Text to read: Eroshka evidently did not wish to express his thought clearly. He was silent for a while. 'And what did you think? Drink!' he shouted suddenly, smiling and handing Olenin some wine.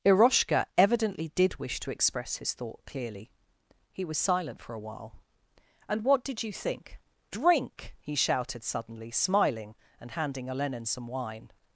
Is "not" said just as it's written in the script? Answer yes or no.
no